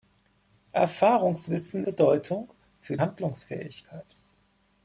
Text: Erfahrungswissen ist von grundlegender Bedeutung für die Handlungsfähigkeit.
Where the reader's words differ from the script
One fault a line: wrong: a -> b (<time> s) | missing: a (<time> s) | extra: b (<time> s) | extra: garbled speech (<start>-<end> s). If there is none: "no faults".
missing: ist von grundlegender (1.9 s)
missing: die (3.0 s)